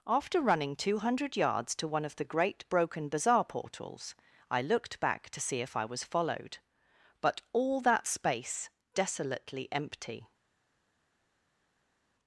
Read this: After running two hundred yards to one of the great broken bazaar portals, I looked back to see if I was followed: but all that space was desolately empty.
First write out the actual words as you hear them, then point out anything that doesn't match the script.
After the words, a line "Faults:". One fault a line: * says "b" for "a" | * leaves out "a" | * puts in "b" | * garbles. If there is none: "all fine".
After running two hundred yards to one of the great broken bazaar portals, I looked back to see if I was followed: but all that space desolately empty.
Faults:
* leaves out "was"